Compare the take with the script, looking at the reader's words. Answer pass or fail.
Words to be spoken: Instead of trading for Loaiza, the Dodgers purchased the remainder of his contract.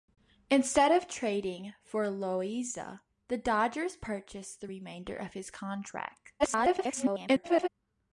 fail